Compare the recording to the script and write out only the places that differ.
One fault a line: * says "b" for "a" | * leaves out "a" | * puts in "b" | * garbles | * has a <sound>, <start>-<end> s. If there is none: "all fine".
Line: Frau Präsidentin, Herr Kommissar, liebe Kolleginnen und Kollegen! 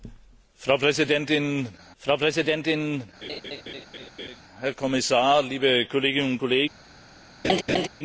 * puts in "frau Präsidentin"
* has a laugh, 3.2-4.4 s
* has a laugh, 7.4-7.9 s